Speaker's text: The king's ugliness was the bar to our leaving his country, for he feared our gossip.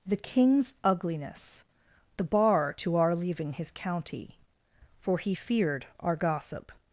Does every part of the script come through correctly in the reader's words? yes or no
no